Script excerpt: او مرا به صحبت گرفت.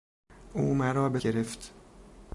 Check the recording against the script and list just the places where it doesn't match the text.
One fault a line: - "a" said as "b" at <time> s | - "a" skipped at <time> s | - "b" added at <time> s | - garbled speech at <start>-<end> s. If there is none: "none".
- "صحبت" skipped at 1.2 s